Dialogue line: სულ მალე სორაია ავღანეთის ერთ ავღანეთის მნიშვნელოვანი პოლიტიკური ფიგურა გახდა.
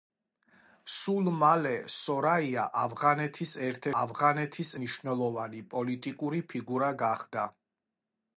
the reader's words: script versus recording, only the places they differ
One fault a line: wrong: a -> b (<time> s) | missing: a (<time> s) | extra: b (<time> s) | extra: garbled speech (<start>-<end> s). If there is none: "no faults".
no faults